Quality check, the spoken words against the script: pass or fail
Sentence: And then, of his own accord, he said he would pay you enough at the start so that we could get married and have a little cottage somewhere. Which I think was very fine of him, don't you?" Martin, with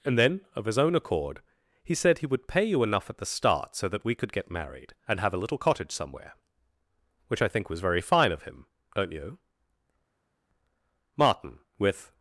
pass